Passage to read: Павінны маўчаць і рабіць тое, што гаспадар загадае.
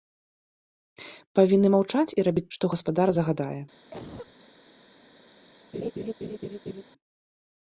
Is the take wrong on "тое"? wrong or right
wrong